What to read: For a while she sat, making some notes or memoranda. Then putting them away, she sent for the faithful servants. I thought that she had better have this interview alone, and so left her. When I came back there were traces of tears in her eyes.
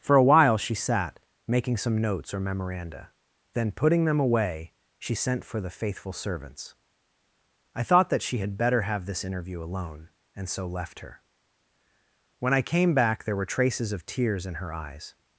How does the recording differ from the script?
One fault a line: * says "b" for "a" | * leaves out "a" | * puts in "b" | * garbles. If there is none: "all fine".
all fine